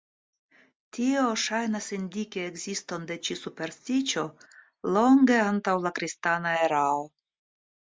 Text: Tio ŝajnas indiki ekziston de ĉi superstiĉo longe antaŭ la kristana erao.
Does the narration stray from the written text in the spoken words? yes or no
no